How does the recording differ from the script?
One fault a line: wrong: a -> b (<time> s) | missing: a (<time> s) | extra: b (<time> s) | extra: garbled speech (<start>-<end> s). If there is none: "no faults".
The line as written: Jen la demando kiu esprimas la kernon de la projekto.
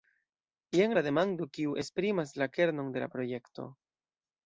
no faults